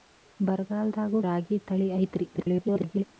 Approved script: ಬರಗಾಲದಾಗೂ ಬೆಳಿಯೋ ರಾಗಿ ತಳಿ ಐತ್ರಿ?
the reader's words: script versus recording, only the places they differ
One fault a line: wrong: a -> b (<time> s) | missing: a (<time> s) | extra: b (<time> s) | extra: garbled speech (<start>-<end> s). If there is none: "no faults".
missing: ಬೆಳಿಯೋ (1.2 s)
extra: garbled speech (2.3-3.0 s)